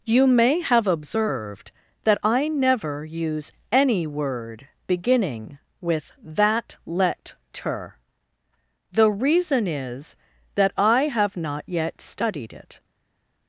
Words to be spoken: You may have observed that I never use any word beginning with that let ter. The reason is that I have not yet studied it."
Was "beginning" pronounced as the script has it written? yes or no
yes